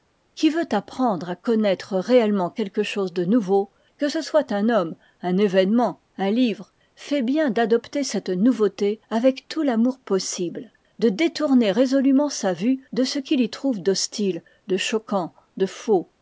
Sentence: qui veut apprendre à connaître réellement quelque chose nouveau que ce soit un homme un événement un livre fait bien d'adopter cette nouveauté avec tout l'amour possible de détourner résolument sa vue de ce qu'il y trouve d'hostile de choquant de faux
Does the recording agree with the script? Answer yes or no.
no